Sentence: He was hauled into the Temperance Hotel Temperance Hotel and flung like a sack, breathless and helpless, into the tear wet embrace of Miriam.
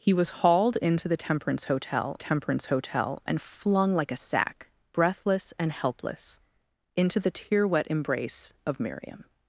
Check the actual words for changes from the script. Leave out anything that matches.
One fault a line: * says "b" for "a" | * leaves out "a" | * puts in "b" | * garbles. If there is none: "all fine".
all fine